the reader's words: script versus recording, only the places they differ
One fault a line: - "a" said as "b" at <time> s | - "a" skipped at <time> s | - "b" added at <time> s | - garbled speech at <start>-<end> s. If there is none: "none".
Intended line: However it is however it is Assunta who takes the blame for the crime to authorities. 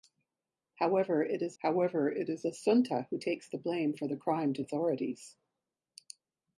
none